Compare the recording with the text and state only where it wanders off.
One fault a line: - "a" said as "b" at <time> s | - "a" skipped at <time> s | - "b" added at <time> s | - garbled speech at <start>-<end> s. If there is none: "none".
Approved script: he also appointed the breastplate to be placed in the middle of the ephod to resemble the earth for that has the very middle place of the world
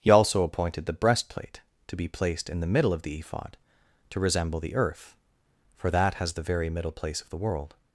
none